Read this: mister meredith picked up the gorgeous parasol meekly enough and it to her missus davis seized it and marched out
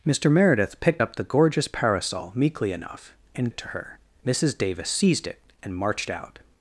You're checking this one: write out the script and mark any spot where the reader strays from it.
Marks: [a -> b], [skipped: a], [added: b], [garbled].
mister meredith picked up the gorgeous parasol meekly enough and it to her missus davis seized it and marched out